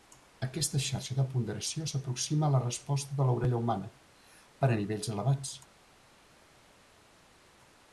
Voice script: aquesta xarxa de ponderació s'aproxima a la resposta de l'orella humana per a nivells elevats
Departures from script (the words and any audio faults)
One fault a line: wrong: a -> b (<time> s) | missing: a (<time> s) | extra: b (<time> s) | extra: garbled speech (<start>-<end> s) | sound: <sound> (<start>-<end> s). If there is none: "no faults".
no faults